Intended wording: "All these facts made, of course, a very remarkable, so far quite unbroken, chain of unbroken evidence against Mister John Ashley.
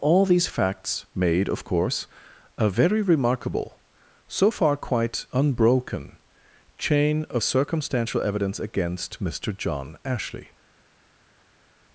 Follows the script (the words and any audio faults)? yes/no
no